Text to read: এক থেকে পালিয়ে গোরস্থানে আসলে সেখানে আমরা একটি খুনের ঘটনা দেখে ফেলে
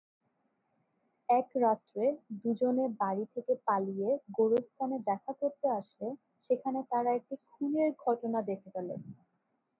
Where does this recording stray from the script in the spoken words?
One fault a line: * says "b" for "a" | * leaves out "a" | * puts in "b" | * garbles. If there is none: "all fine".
* puts in "রাত্রে দু'জনে বাড়ি"
* puts in "দেখা করতে"
* says "তারা" for "আমরা"